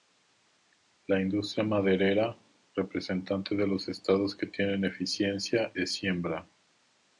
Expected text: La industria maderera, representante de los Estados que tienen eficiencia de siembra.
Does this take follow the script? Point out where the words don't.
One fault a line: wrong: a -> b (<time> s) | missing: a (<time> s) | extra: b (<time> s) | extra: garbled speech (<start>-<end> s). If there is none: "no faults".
no faults